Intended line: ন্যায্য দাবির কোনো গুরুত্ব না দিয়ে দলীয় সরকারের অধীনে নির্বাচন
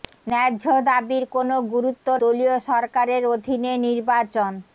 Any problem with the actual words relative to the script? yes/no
yes